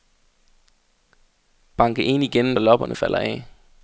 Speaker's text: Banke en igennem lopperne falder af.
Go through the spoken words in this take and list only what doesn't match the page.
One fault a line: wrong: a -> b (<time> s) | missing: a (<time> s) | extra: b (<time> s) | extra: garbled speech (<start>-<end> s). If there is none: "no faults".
no faults